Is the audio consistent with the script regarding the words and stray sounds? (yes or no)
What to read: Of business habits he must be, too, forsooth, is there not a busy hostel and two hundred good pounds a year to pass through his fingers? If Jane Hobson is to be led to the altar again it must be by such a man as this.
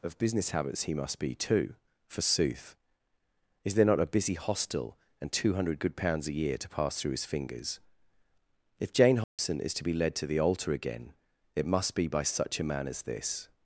no